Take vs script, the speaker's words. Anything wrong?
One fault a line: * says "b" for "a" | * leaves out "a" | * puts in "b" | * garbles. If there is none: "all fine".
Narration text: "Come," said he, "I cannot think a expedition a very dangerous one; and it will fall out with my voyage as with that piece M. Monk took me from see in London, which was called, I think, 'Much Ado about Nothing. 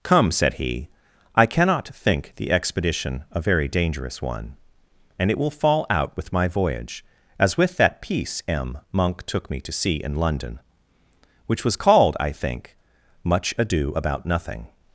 * says "the" for "a"
* says "to" for "from"